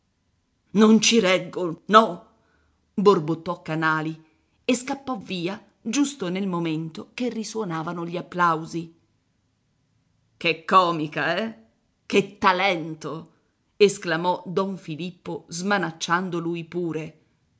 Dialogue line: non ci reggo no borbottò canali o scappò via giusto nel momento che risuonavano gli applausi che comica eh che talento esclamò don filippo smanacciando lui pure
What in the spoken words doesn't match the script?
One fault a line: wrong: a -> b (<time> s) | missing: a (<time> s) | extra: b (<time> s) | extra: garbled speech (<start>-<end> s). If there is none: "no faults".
wrong: o -> e (4.6 s)